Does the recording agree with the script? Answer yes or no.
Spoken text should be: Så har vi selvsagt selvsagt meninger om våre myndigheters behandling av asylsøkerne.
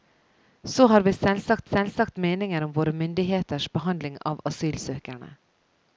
yes